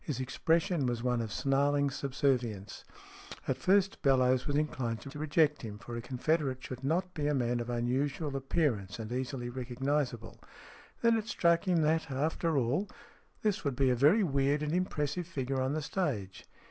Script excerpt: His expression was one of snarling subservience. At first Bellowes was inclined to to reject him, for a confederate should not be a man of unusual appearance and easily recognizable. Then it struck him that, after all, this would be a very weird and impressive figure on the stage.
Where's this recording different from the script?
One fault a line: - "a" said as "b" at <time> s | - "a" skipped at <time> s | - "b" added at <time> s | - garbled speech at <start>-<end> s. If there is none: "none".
none